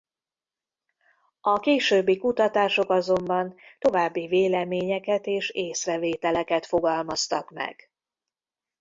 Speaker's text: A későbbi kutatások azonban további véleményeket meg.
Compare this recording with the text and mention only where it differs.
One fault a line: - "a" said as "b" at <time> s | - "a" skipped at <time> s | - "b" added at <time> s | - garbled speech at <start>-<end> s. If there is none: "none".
- "és észrevételeket fogalmaztak" added at 5.2 s